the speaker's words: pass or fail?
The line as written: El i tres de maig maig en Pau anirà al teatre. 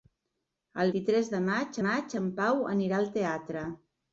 pass